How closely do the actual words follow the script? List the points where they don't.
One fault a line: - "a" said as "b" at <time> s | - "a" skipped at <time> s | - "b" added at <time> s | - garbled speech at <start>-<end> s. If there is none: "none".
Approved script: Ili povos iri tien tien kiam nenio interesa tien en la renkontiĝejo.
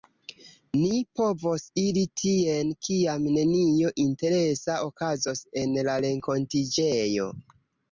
- "Ili" said as "Ni" at 0.8 s
- "tien" skipped at 2.7 s
- "tien" said as "okazos" at 4.9 s